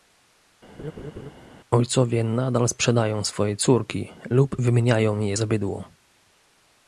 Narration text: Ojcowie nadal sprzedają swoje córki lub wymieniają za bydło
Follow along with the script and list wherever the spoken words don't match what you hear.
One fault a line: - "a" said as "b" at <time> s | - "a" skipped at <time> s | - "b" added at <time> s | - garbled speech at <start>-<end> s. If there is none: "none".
- "je" added at 5.2 s